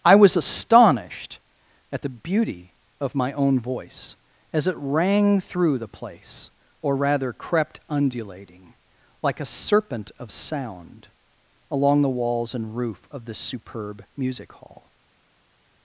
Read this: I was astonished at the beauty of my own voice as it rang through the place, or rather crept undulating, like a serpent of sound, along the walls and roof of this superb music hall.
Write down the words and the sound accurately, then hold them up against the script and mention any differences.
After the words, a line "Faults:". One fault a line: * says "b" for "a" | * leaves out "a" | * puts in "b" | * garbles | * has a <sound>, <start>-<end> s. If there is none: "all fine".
I was astonished at the beauty of my own voice as it rang through the place, or rather crept undulating, like a serpent of sound, along the walls and roof of this superb music hall.
Faults:
all fine